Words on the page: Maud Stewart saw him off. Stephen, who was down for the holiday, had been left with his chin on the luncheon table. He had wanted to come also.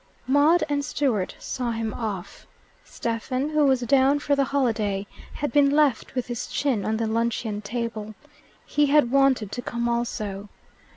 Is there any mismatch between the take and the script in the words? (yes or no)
yes